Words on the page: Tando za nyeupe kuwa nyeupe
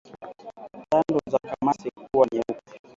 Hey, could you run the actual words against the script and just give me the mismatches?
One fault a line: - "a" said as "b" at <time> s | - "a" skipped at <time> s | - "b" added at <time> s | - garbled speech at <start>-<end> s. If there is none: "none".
- "nyeupe" said as "kamasi" at 1.4 s